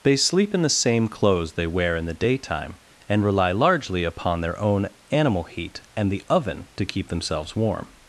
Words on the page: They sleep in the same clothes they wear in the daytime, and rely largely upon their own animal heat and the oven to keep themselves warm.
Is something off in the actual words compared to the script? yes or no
no